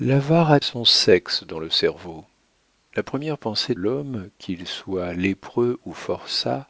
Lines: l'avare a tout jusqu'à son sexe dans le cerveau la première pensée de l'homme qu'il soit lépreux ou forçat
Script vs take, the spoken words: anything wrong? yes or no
yes